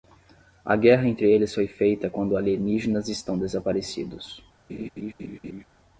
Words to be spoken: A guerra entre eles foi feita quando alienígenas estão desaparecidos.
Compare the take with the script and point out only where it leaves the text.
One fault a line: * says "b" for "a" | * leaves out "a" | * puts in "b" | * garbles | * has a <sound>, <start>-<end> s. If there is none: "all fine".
* has a laugh, 4.7-5.6 s